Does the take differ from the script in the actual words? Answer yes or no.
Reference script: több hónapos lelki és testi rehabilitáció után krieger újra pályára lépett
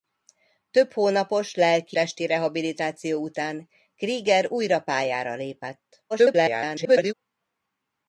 yes